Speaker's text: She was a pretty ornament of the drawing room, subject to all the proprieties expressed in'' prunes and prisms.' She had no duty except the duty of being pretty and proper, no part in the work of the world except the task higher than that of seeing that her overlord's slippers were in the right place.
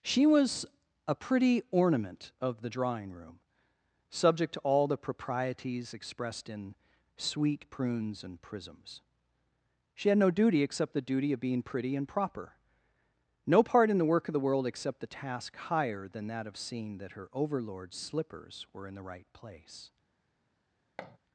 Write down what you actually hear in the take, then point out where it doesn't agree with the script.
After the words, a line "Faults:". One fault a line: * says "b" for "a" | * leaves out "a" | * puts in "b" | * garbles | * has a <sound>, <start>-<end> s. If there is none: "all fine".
She was a pretty ornament of the drawing room, subject to all the proprieties expressed in'' sweet prunes and prisms.' She had no duty except the duty of being pretty and proper, no part in the work of the world except the task higher than that of seeing that her overlord's slippers were in the right place.
Faults:
* puts in "sweet"
* has a thud, 21.0-21.2 s